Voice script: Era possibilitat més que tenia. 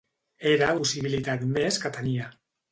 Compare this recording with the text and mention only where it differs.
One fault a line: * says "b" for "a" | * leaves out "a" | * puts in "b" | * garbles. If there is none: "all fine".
all fine